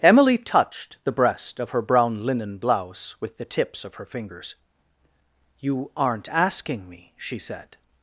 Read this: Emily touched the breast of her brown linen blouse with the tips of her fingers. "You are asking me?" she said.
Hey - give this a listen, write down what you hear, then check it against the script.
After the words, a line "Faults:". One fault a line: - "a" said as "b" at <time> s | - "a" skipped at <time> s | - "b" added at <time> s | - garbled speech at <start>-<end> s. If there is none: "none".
Emily touched the breast of her brown linen blouse with the tips of her fingers. "You aren't asking me?" she said.
Faults:
- "are" said as "aren't" at 6.0 s